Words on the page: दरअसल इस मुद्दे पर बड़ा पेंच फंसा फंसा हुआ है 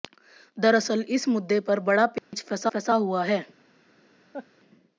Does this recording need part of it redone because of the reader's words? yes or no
no